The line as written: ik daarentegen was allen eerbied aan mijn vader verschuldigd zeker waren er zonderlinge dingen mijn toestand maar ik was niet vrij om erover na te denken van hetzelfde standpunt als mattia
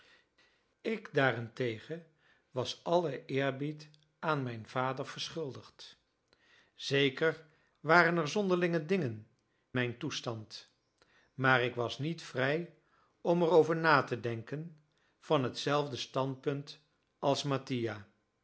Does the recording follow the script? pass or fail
pass